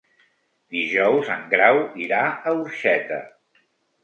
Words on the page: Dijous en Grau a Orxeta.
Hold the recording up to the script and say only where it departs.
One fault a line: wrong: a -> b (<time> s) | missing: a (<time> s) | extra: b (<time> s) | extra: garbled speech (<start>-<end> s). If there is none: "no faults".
extra: irà (2.1 s)